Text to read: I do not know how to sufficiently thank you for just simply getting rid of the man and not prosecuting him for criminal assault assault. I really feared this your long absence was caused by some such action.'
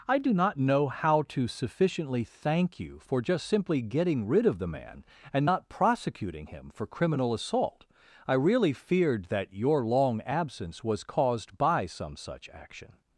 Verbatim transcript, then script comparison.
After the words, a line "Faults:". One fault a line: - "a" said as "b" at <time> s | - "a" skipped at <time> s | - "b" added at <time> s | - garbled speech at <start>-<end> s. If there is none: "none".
I do not know how to sufficiently thank you for just simply getting rid of the man and not prosecuting him for criminal assault. I really feared that your long absence was caused by some such action.'
Faults:
- "assault" skipped at 7.8 s
- "this" said as "that" at 9.3 s